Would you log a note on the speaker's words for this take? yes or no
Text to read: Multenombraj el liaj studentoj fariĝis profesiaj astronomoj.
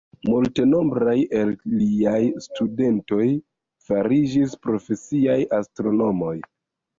no